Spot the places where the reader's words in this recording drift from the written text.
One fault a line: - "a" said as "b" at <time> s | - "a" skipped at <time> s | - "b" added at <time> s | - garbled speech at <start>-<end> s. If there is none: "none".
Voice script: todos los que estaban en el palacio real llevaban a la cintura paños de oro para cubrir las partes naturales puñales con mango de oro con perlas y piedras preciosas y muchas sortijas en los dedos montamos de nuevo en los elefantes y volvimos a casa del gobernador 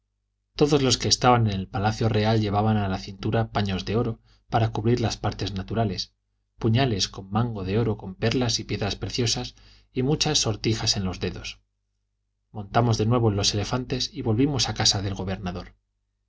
none